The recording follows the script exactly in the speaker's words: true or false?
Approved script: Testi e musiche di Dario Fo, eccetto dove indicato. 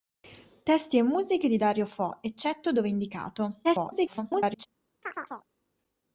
false